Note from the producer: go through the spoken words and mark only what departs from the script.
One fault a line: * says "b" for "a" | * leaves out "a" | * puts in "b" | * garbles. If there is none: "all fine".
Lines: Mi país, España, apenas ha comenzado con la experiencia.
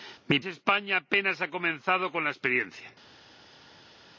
* leaves out "país"